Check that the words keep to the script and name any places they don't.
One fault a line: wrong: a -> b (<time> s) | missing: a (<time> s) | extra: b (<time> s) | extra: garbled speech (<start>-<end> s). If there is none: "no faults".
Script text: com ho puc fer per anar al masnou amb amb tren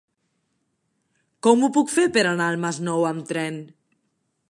missing: amb (3.3 s)